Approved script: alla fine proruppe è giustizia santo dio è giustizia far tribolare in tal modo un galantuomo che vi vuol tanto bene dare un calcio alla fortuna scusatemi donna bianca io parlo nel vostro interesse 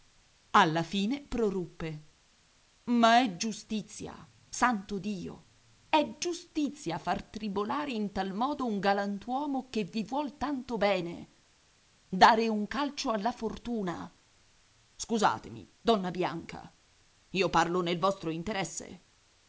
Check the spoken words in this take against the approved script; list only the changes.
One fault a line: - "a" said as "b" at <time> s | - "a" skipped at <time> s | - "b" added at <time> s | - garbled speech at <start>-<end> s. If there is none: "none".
- "ma" added at 2.9 s